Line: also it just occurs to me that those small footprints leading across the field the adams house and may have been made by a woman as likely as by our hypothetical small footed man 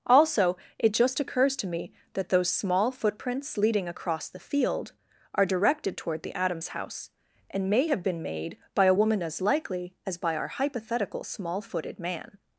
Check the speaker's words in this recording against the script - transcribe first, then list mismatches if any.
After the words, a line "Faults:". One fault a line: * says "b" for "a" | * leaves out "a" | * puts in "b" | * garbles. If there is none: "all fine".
also it just occurs to me that those small footprints leading across the field are directed toward the adams house and may have been made by a woman as likely as by our hypothetical small footed man
Faults:
* puts in "are directed toward"